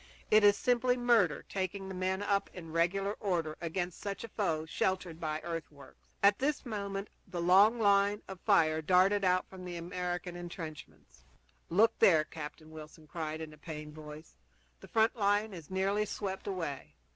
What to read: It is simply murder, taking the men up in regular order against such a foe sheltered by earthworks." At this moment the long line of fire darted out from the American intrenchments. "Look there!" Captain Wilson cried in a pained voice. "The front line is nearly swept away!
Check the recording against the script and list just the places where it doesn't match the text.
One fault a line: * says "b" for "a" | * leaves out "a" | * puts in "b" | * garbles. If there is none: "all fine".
all fine